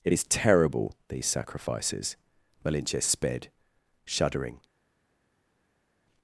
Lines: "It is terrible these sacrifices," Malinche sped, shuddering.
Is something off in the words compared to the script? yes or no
no